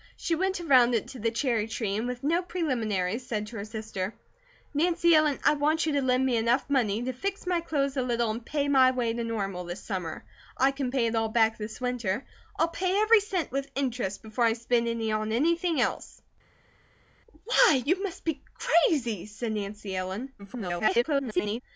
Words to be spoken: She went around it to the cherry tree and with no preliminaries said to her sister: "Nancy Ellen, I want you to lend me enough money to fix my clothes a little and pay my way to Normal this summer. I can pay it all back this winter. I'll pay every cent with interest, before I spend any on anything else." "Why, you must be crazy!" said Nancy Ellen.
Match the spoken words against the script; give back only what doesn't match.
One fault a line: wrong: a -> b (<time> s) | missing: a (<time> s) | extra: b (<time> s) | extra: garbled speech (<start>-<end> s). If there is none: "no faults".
extra: garbled speech (20.4-21.6 s)